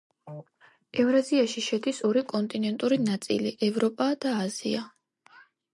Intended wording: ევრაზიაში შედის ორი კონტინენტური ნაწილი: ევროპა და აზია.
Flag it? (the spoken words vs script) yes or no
no